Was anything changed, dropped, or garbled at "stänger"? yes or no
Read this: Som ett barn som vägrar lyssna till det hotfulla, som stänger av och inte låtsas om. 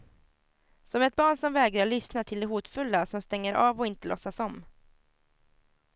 no